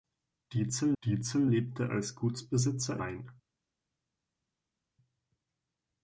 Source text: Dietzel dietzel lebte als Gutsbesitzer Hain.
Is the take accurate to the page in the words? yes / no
yes